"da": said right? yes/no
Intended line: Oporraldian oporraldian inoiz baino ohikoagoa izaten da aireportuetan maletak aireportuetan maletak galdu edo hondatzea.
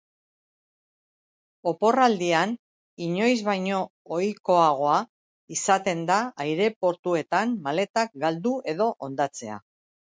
yes